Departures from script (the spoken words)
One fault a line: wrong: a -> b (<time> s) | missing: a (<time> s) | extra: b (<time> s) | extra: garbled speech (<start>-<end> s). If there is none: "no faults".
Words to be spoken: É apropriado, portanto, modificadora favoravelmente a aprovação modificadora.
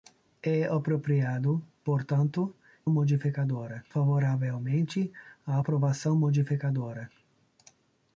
no faults